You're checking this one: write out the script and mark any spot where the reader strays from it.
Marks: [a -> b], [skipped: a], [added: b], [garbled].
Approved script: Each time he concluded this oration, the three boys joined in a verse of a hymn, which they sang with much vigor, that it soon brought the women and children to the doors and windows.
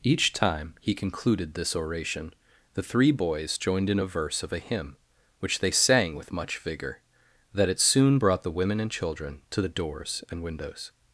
Each time he concluded this oration, the three boys joined in a verse of a hymn, which they sang with much vigor, that it soon brought the women and children to the doors and windows.